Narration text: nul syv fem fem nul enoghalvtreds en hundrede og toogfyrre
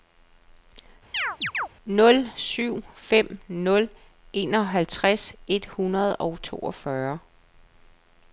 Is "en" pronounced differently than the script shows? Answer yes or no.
yes